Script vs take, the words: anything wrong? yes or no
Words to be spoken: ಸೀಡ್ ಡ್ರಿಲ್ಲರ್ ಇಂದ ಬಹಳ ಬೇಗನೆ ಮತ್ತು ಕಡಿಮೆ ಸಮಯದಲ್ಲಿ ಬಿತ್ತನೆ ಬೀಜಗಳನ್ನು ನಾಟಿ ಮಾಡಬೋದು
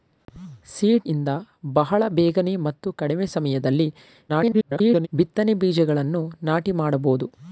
yes